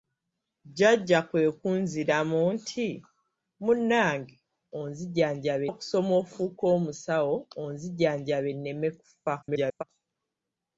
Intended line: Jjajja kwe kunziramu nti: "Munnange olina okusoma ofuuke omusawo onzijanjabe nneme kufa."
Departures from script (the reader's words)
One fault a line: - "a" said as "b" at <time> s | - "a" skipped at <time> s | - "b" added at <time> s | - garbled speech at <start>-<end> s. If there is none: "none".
- "olina" said as "onzijanjabe" at 4.8 s
- garbled speech at 9.4-9.8 s